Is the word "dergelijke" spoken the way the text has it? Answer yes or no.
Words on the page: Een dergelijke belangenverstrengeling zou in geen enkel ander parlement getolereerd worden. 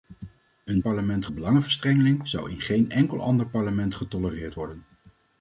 no